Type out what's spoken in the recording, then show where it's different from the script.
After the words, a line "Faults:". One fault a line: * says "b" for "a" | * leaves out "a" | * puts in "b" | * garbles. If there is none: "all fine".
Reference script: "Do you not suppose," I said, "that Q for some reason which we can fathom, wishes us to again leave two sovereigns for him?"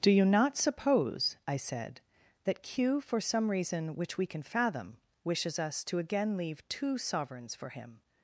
"Do you not suppose," I said, "that Q for some reason which we can fathom, wishes us to again leave two sovereigns for him?"
Faults:
all fine